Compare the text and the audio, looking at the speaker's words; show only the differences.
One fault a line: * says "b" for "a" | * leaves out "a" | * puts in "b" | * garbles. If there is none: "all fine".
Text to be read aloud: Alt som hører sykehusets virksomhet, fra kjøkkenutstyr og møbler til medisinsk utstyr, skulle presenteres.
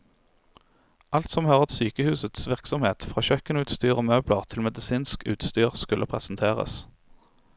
all fine